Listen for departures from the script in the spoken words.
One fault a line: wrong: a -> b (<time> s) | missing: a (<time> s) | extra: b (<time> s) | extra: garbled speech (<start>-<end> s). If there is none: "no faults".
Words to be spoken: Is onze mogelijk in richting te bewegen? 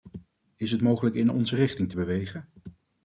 wrong: onze -> het (0.7 s)
extra: onze (1.3 s)